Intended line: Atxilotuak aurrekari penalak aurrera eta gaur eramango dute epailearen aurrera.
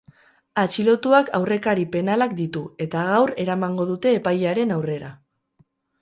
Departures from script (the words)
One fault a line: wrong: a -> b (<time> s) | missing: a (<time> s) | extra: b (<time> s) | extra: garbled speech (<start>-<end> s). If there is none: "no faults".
wrong: aurrera -> ditu (2.4 s)